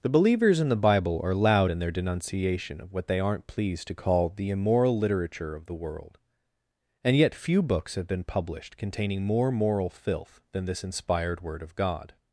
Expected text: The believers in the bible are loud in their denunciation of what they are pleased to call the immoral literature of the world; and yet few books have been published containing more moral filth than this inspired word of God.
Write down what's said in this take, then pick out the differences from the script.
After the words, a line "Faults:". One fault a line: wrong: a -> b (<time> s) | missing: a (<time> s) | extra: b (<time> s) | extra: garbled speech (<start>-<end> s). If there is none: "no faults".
The believers in the bible are loud in their denunciation of what they aren't pleased to call the immoral literature of the world; and yet few books have been published containing more moral filth than this inspired word of God.
Faults:
wrong: are -> aren't (3.2 s)